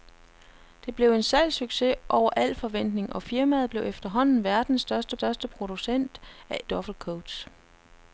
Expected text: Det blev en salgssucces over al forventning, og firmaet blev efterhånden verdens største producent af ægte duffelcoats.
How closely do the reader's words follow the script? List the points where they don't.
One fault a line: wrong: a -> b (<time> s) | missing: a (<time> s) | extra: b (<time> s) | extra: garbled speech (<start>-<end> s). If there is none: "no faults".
extra: største (5.1 s)
missing: ægte (6.6 s)